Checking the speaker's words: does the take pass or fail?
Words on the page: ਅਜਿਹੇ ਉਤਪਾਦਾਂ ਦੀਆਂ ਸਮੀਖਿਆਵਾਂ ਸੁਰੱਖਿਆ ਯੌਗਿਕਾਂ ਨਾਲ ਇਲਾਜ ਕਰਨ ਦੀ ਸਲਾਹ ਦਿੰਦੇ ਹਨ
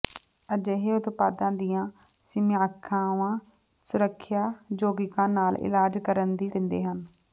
fail